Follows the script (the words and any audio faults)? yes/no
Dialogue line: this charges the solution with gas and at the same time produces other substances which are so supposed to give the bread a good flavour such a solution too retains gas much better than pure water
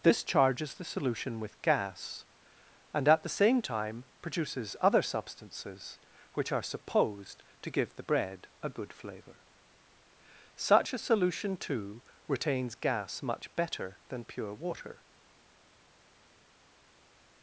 no